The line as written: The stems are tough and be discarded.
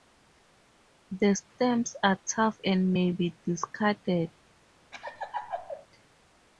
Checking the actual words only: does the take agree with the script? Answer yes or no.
no